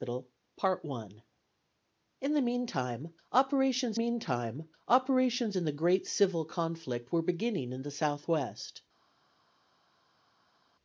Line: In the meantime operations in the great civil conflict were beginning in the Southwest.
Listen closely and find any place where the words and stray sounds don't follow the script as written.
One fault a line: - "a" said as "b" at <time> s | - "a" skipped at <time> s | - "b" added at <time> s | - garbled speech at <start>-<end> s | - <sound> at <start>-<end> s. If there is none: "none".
- "meantime operations" added at 3.9 s